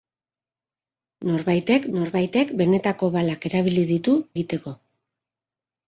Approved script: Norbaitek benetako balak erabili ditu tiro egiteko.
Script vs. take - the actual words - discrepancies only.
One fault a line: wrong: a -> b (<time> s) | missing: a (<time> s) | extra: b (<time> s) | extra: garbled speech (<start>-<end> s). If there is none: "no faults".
extra: norbaitek (2.0 s)
missing: tiro (4.2 s)